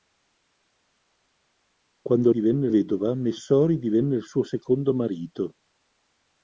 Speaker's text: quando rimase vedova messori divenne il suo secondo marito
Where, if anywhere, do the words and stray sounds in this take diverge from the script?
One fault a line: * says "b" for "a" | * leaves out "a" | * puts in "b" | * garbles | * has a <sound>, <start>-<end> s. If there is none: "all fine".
* says "divenne" for "rimase"